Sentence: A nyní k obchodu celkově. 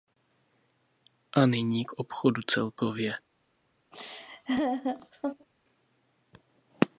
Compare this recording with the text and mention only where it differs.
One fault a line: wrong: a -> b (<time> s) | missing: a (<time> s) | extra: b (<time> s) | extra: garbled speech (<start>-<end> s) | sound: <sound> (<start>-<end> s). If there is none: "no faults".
sound: laugh (3.9-5.5 s)